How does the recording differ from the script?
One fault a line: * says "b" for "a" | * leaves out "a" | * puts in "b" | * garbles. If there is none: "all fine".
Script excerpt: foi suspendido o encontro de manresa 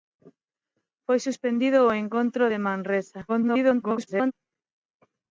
* garbles